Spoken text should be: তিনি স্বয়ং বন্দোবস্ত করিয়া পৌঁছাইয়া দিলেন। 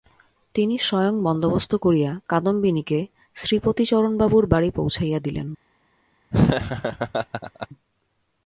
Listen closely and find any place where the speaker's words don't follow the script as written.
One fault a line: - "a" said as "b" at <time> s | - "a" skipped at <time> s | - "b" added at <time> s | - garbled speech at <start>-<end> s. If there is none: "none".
- "কাদম্বিনীকে শ্রীপতিচরণবাবুর বাড়ি" added at 2.3 s